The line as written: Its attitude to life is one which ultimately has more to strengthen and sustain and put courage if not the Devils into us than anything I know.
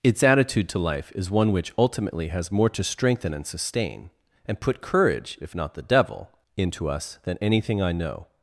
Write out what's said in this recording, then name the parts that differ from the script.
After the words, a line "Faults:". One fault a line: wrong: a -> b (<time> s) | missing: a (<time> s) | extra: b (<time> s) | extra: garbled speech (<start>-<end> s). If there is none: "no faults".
Its attitude to life is one which ultimately has more to strengthen and sustain and put courage if not the Devil into us than anything I know.
Faults:
wrong: Devils -> Devil (5.8 s)